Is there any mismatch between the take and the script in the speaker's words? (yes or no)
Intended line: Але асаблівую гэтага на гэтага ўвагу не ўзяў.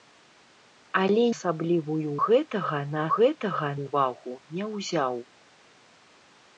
no